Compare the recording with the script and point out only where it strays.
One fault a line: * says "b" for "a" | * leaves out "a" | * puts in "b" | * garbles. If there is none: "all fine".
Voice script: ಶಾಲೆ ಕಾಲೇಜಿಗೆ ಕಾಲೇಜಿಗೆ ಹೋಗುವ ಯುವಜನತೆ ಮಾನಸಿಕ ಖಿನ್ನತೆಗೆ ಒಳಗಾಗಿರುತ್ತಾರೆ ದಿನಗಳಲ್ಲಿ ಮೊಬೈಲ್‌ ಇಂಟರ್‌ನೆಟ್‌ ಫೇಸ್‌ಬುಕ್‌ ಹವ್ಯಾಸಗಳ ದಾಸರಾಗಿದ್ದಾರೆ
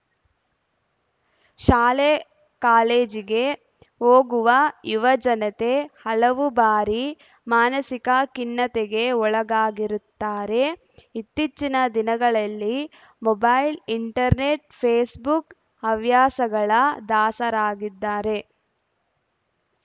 * leaves out "ಕಾಲೇಜಿಗೆ"
* puts in "ಹಲವು ಬಾರಿ"
* puts in "ಇತ್ತೀಚಿನ"